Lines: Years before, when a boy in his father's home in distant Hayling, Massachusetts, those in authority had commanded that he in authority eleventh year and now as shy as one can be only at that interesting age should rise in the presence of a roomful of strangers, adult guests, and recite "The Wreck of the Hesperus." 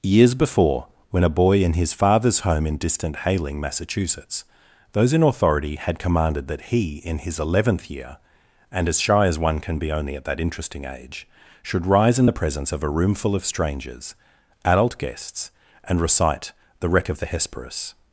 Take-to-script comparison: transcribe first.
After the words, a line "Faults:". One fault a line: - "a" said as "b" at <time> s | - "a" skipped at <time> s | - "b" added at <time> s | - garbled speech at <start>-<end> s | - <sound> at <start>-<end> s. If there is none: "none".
Years before, when a boy in his father's home in distant Hayling, Massachusetts, those in authority had commanded that he in his eleventh year and as shy as one can be only at that interesting age should rise in the presence of a roomful of strangers, adult guests, and recite "The Wreck of the Hesperus."
Faults:
- "authority" said as "his" at 7.2 s
- "now" skipped at 8.9 s